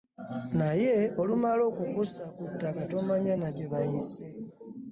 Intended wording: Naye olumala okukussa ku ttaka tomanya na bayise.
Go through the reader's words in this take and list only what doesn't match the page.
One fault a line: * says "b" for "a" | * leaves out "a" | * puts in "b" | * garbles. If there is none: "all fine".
* puts in "gye"